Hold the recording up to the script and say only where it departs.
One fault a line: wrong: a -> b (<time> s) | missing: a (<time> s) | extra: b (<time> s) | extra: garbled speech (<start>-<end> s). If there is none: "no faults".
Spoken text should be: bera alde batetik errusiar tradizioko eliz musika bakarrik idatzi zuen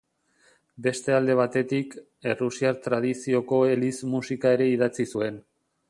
wrong: bera -> beste (0.8 s)
wrong: bakarrik -> ere (4.6 s)